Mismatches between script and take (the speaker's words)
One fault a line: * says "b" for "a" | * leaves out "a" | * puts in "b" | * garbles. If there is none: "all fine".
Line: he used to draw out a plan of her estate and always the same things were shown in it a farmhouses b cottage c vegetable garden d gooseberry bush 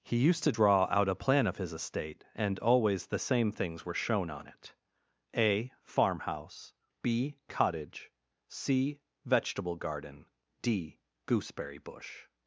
* says "his" for "her"
* says "on" for "in"
* says "farmhouse" for "farmhouses"